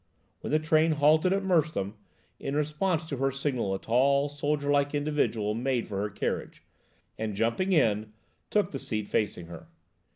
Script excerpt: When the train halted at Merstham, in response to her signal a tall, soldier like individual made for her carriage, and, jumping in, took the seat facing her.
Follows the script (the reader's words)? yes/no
yes